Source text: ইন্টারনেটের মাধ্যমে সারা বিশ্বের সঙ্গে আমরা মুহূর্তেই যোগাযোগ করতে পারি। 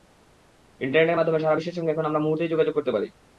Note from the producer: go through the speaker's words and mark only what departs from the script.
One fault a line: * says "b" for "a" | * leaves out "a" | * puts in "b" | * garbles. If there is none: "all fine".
* puts in "এখন"